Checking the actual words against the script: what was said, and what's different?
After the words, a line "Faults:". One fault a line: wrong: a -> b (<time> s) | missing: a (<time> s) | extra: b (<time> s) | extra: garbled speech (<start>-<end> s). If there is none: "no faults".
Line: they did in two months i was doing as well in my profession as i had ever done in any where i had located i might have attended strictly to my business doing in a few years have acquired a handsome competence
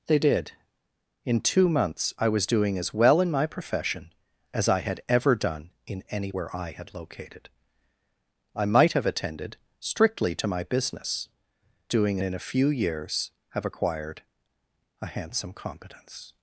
they did in two months i was doing as well in my profession as i had ever done in any where i had located i might have attended strictly to my business doing in a few years have acquired a handsome competence
Faults:
no faults